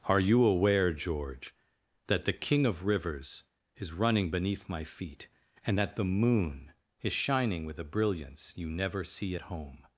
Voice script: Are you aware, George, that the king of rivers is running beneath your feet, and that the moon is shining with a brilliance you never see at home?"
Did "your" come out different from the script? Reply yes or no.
yes